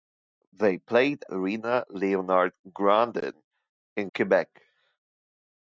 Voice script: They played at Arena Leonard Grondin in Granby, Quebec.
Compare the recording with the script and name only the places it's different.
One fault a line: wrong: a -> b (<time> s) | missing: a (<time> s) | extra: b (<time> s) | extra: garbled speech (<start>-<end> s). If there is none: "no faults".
missing: at (1.2 s)
missing: Granby (4.1 s)